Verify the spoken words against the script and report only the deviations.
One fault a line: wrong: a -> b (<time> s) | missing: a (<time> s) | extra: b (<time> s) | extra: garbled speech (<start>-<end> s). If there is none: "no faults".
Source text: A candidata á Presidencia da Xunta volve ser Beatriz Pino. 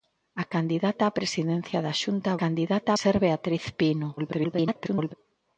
wrong: volve -> candidata (2.4 s)
extra: garbled speech (4.2-5.1 s)